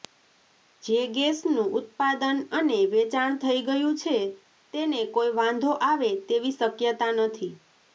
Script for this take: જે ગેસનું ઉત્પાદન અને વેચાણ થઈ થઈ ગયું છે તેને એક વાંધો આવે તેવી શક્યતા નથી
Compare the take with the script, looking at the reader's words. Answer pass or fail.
fail